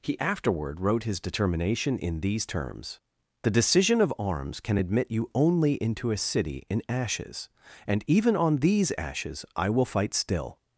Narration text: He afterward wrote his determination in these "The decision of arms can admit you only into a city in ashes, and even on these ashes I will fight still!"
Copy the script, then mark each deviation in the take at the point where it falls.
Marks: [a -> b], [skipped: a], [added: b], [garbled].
He afterward wrote his determination in these [added: terms] "The decision of arms can admit you only into a city in ashes, and even on these ashes I will fight still!"